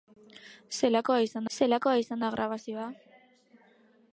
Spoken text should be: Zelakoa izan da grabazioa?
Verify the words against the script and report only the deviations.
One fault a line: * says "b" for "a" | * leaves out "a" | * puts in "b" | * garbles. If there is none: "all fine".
* puts in "zelakoa izan"